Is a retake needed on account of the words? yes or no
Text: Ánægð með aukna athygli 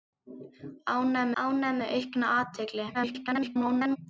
yes